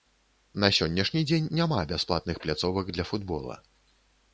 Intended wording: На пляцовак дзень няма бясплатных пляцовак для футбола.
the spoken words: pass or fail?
fail